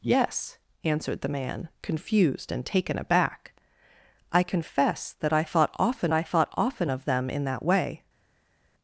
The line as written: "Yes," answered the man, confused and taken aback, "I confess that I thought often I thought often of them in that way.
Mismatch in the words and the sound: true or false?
false